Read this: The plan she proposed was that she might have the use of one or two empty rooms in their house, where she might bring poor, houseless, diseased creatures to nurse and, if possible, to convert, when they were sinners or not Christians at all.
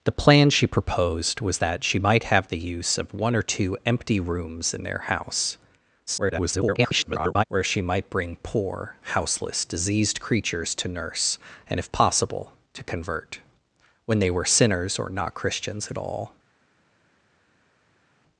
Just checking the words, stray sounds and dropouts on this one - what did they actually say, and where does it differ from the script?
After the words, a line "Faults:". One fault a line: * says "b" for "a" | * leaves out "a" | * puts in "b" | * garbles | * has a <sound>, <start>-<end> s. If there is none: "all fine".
The plan she proposed was that she might have the use of one or two empty rooms in their house, [garbled] where she might bring poor, houseless, diseased creatures to nurse and, if possible, to convert, when they were sinners or not Christians at all.
Faults:
* garbles